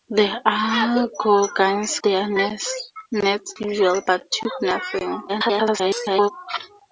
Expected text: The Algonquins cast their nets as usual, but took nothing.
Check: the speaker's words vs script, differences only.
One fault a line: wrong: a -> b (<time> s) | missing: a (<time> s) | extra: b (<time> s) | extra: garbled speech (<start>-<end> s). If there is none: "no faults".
missing: cast (2.0 s)
missing: as (3.6 s)
extra: garbled speech (5.3-6.3 s)